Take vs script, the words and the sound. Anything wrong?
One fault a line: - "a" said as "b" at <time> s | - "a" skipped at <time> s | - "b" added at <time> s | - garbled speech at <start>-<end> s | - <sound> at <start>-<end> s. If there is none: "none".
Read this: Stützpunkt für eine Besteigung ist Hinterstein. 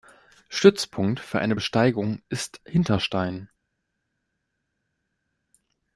none